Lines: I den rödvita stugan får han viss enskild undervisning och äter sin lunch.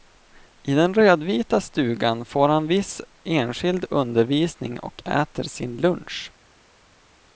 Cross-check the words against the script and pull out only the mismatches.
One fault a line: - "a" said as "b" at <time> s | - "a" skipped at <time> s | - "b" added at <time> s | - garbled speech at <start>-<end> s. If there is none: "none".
none